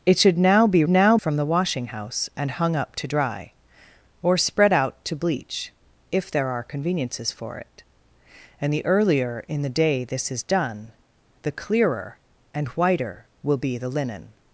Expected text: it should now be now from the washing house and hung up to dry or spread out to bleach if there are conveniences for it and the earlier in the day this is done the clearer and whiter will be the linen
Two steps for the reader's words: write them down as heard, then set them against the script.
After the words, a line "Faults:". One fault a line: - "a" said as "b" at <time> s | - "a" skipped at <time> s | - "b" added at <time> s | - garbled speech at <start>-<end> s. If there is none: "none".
it should now be now from the washing house and hung up to dry or spread out to bleach if there are conveniences for it and the earlier in the day this is done the clearer and whiter will be the linen
Faults:
none